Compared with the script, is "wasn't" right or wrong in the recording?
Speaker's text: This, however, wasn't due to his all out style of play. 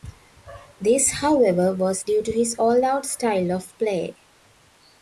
wrong